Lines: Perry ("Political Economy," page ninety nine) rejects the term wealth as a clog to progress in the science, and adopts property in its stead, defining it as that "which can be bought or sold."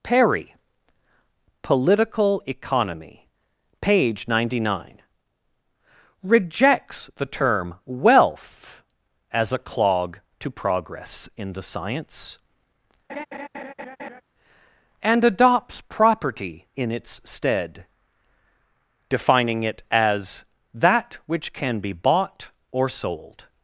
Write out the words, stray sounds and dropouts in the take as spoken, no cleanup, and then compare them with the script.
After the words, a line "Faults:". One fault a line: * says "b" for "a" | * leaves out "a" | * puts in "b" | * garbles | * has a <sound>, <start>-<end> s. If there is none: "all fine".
Perry ("Political Economy," page ninety nine) rejects the term wealth as a clog to progress in the science, and adopts property in its stead, defining it as that "which can be bought or sold."
Faults:
* has a laugh, 13.1-14.2 s